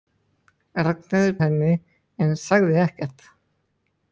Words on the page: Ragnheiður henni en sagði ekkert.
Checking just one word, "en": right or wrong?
right